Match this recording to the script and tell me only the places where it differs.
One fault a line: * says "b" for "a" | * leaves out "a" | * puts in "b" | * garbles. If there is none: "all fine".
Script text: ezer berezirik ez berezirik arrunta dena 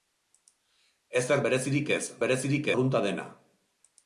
all fine